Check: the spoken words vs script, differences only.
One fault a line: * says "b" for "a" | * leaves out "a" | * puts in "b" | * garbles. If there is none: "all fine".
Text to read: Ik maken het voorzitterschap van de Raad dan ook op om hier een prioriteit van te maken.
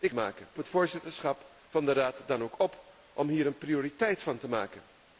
all fine